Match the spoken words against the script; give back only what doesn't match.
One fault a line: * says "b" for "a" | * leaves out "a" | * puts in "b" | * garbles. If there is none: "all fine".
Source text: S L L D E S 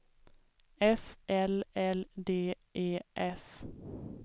all fine